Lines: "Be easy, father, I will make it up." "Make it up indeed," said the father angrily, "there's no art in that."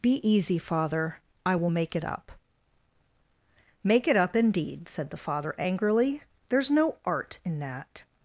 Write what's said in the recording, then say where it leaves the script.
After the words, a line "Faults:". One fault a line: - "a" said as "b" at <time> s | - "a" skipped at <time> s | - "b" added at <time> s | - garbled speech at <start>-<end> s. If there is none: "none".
"Be easy, father, I will make it up." "Make it up indeed," said the father angrily, "there's no art in that."
Faults:
none